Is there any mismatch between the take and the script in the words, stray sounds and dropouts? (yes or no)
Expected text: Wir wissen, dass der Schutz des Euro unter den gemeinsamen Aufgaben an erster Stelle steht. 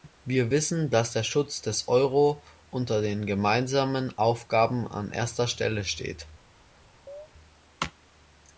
yes